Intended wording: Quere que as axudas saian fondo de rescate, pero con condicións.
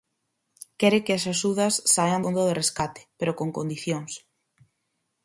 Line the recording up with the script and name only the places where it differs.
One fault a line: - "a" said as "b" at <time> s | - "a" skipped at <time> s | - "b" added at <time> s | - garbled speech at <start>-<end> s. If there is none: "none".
none